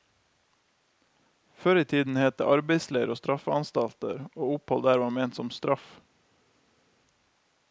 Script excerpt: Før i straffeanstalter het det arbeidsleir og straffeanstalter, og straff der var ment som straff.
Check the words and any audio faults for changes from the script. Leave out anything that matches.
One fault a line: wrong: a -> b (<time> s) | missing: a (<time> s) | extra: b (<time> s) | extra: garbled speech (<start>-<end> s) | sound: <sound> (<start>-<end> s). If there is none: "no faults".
wrong: straffeanstalter -> tiden (1.9 s)
wrong: straff -> opphold (4.6 s)